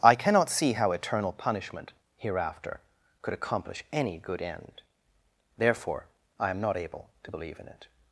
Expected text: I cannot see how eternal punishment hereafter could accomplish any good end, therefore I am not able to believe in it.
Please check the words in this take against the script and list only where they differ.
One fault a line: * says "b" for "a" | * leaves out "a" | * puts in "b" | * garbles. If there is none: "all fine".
all fine